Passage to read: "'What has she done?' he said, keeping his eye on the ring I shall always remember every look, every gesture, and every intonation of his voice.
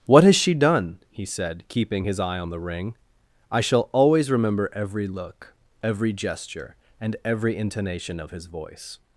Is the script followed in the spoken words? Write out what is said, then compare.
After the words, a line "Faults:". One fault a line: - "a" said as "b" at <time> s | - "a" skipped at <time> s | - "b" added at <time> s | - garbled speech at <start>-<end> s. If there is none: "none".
"'What has she done?' he said, keeping his eye on the ring I shall always remember every look, every gesture, and every intonation of his voice.
Faults:
none